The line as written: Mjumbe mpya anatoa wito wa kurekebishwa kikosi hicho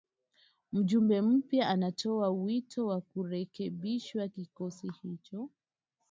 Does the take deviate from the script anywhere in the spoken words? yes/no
no